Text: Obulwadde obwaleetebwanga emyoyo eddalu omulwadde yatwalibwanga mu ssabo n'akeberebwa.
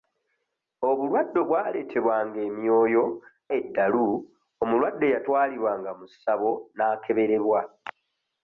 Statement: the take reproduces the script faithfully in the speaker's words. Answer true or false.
true